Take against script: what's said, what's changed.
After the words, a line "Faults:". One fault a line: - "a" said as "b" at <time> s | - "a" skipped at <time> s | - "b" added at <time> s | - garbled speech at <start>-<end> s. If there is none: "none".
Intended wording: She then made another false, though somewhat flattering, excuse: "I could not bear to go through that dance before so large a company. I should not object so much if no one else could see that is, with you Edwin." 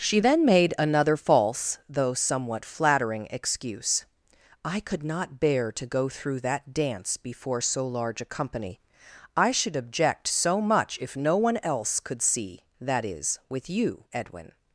She then made another false, though somewhat flattering, excuse: "I could not bear to go through that dance before so large a company. I should object so much if no one else could see that is, with you Edwin."
Faults:
- "not" skipped at 9.7 s